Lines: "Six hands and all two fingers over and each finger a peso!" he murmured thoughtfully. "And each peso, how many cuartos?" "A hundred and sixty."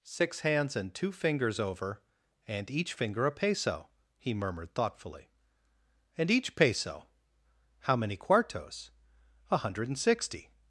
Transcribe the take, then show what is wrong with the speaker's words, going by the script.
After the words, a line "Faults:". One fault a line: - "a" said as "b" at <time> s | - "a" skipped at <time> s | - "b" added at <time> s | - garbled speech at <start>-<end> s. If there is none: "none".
"Six hands and two fingers over and each finger a peso!" he murmured thoughtfully. "And each peso, how many cuartos?" "A hundred and sixty."
Faults:
- "all" skipped at 0.9 s